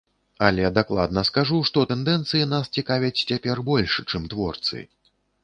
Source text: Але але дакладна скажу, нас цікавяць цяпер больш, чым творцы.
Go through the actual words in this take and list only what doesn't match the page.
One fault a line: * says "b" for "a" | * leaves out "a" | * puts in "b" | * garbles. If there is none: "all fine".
* leaves out "але"
* puts in "што тэндэнцыі"